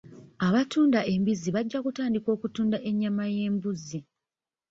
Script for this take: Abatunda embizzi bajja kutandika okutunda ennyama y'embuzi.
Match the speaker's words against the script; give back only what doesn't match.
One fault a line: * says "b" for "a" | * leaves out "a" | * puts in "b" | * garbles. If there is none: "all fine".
all fine